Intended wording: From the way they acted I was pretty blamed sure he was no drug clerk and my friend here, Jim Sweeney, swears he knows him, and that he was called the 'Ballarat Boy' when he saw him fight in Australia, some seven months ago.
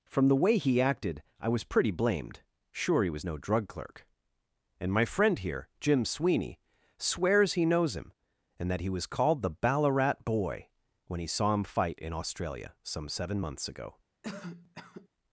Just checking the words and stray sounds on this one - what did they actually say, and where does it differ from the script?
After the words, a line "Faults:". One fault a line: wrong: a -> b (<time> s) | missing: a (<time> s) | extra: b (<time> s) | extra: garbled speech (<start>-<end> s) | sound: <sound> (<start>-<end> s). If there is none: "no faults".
From the way he acted I was pretty blamed sure he was no drug clerk and my friend here, Jim Sweeney, swears he knows him, and that he was called the 'Ballarat Boy' when he saw him fight in Australia, some seven months ago.
Faults:
wrong: they -> he (0.6 s)
sound: cough (14.2-15.1 s)